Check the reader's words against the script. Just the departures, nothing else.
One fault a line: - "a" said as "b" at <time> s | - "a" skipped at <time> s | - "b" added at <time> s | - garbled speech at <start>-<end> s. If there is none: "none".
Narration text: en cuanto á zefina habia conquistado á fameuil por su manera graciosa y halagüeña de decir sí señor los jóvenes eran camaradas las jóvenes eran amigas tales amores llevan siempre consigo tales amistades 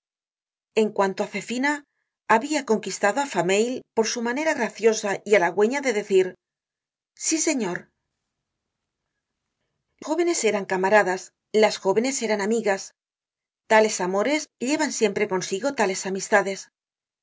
- "los" skipped at 7.8 s